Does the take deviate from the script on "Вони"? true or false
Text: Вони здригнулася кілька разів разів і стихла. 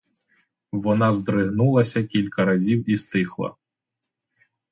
true